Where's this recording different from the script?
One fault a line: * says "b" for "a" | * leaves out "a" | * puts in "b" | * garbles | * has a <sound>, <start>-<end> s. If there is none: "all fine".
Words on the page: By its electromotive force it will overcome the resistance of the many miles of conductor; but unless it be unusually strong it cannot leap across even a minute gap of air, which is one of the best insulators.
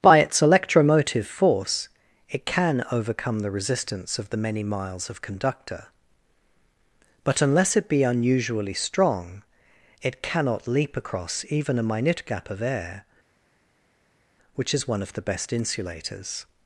* says "can" for "will"